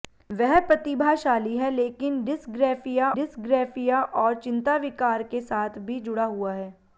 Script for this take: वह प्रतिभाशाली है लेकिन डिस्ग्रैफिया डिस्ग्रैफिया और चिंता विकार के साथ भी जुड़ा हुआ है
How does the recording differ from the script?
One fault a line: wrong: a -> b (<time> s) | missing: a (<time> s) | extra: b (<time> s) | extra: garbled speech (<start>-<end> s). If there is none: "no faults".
no faults